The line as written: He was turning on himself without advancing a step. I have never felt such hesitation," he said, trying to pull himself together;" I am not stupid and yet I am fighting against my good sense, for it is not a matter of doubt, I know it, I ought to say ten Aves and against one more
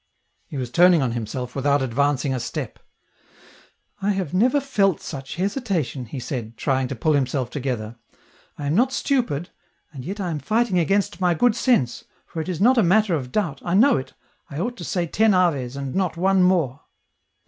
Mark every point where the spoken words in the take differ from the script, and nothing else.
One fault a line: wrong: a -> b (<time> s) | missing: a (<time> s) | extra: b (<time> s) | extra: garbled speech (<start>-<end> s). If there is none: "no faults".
wrong: against -> not (15.9 s)